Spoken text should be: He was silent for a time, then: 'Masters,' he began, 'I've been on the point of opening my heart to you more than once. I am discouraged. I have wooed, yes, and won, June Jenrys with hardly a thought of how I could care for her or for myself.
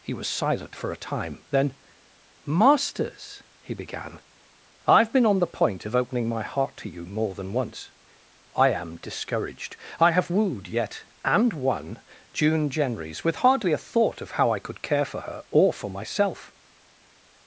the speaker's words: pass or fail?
fail